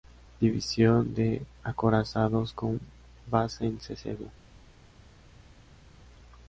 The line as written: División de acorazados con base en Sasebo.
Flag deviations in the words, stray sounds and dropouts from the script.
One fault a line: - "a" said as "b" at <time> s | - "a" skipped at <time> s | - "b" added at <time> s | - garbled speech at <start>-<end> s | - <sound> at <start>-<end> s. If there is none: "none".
none